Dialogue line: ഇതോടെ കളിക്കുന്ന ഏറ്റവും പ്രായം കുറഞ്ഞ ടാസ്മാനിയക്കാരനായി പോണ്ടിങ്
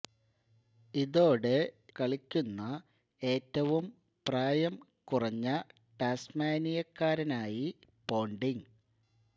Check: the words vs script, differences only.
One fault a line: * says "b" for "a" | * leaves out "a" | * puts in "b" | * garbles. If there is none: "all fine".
all fine